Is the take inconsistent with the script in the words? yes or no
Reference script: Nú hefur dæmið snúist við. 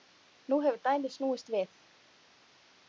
no